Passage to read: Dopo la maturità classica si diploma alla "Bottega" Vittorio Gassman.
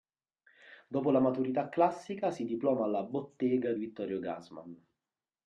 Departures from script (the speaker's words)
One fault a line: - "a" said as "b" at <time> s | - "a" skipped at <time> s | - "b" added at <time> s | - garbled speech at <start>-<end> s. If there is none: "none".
none